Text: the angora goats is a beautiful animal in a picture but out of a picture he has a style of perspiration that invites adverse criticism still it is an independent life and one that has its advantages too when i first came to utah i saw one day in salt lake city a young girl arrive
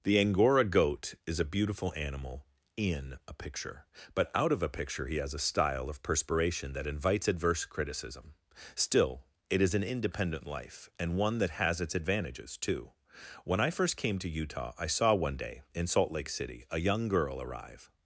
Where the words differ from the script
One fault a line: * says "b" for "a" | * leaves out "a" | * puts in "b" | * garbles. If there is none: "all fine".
* says "goat" for "goats"